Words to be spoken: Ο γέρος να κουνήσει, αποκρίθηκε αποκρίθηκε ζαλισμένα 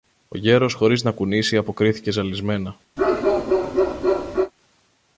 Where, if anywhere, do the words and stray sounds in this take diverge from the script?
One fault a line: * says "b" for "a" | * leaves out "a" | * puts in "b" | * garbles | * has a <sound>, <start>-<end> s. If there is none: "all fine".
* puts in "χωρίς"
* leaves out "αποκρίθηκε"
* has a bark, 3.0-4.5 s